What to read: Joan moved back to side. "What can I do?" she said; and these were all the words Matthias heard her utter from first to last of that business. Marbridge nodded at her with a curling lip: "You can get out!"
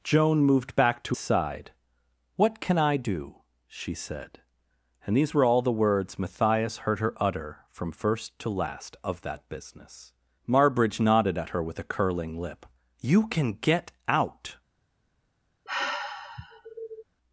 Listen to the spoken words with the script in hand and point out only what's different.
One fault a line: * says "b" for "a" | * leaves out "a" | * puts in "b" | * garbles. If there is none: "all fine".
all fine